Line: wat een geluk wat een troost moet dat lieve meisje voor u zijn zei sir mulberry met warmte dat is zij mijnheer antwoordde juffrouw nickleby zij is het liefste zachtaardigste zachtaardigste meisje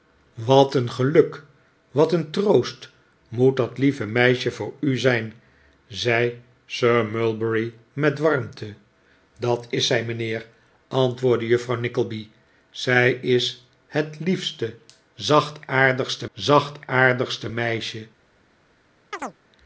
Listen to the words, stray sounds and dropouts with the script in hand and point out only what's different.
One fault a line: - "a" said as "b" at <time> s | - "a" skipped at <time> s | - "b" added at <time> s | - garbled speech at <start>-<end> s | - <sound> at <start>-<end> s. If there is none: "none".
- chirp at 19.1-19.4 s